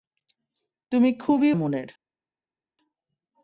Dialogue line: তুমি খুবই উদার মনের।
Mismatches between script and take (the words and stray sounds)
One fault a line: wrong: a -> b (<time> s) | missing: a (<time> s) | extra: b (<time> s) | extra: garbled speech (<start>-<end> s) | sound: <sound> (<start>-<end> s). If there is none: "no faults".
missing: উদার (1.5 s)